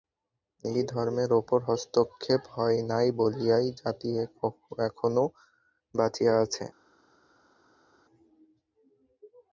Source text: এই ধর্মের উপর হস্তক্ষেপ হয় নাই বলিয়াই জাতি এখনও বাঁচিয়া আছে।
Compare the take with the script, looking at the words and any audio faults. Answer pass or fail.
pass